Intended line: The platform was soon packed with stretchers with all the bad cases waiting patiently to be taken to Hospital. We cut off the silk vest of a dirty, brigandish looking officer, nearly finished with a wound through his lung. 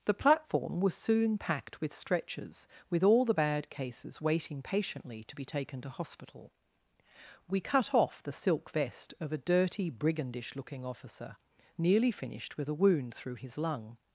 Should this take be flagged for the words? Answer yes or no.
no